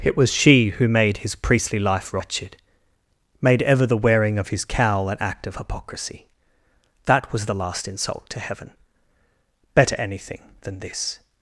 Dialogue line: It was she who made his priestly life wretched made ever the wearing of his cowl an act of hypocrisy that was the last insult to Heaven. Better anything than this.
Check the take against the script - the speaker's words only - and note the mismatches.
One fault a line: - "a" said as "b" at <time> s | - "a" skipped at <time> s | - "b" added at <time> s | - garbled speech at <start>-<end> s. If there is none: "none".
none